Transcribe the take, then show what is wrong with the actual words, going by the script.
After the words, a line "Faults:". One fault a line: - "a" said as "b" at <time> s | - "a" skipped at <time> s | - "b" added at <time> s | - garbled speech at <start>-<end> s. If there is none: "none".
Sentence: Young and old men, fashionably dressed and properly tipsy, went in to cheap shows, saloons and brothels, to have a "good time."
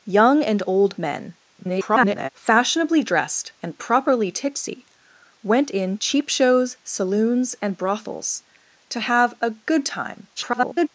Young and old men, [garbled] fashionably dressed and properly tipsy, went in cheap shows, saloons and brothels, to have a "good time." [garbled]
Faults:
- garbled speech at 1.6-2.3 s
- "to" skipped at 6.0 s
- garbled speech at 10.4-10.9 s